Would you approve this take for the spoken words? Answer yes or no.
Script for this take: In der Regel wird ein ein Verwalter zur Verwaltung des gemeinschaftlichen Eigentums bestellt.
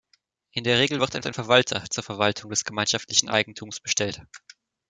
yes